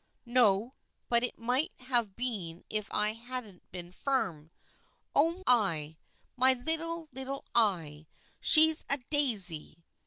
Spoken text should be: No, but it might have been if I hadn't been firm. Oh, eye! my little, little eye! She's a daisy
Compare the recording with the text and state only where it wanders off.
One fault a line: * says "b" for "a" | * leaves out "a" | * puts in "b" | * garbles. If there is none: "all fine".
all fine